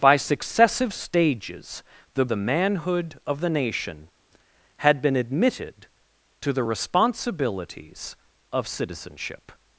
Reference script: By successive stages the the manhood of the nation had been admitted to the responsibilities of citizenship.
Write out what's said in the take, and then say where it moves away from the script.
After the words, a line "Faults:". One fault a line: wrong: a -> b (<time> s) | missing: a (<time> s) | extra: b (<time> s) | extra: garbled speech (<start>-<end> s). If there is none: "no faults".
By successive stages the the manhood of the nation had been admitted to the responsibilities of citizenship.
Faults:
no faults